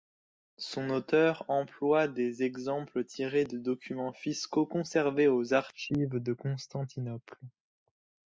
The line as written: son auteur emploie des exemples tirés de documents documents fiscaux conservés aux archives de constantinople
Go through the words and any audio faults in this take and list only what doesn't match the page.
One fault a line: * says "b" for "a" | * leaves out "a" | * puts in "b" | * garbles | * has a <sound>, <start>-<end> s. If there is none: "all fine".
* leaves out "documents"